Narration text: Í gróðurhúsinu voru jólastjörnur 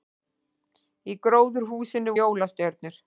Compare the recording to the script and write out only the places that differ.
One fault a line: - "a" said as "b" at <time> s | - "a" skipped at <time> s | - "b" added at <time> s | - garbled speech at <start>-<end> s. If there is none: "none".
- "voru" skipped at 2.2 s